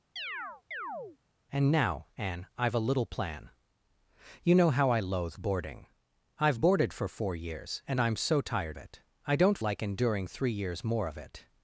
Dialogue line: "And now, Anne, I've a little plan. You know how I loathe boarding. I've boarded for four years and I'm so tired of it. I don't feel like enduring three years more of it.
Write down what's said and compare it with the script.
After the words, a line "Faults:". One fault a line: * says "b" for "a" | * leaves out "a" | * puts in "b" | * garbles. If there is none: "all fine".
"And now, Anne, I've a little plan. You know how I loathe boarding. I've boarded for four years and I'm so tired it. I don't like enduring three years more of it.
Faults:
* leaves out "of"
* leaves out "feel"